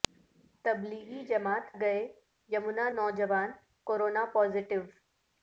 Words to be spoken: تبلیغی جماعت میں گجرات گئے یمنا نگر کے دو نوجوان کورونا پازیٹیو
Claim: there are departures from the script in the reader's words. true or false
true